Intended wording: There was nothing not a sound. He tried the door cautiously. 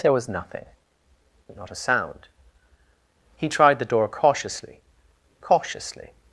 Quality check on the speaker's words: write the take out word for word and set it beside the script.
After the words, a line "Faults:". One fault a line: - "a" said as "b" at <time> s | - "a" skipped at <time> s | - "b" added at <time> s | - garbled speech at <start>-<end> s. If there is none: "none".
There was nothing not a sound. He tried the door cautiously cautiously.
Faults:
- "cautiously" added at 5.4 s